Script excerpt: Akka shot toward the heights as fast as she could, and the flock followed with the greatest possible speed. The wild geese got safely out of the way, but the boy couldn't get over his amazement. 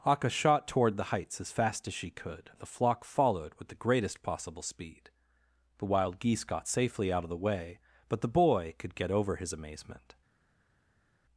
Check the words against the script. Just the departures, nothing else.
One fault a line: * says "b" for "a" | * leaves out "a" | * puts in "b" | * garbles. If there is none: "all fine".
* says "could" for "couldn't"